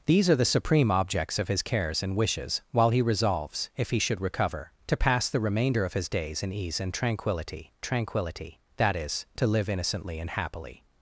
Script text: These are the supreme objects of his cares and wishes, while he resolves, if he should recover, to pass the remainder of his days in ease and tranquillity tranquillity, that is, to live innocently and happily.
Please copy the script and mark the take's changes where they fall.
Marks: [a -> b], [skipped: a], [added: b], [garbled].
These are the supreme objects of his cares and wishes, while he resolves, if he should recover, to pass the remainder of his days in ease and tranquillity tranquillity, that is, to live innocently and happily.